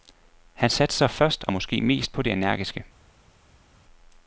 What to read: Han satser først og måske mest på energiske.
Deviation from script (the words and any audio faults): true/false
true